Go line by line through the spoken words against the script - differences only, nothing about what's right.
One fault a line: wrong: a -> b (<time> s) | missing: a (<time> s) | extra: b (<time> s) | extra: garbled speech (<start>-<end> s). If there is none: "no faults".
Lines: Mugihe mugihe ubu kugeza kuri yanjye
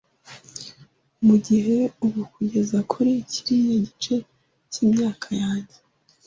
missing: mugihe (1.8 s)
extra: kiriya gice cyimyaka (3.3 s)